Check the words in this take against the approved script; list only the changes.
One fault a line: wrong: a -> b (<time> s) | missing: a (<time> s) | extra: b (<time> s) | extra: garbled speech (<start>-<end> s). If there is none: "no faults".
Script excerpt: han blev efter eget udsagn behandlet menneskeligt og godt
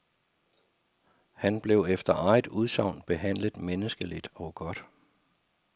no faults